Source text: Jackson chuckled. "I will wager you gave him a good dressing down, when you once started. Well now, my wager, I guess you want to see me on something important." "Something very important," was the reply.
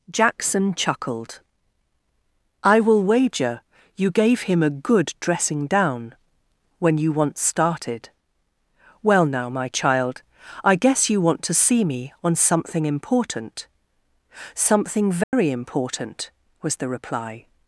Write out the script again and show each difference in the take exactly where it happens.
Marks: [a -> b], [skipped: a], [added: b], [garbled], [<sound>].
Jackson chuckled. "I will wager you gave him a good dressing down, when you once started. Well now, my [wager, -> child] I guess you want to see me on something important." "Something very [dropout] important," was the reply.